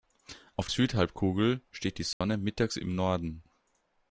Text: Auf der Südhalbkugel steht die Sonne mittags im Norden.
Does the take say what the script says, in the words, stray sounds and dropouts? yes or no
no